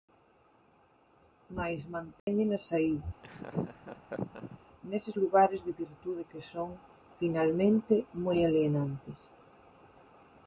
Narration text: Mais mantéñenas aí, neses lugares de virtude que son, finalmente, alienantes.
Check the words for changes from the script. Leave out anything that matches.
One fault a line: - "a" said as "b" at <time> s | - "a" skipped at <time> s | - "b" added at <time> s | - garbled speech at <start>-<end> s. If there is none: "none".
- "moi" added at 8.2 s